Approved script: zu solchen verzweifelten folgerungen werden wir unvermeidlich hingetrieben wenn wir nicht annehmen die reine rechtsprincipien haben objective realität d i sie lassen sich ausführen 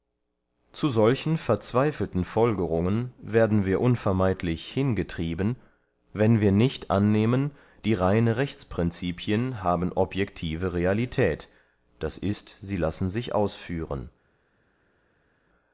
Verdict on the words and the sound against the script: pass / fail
pass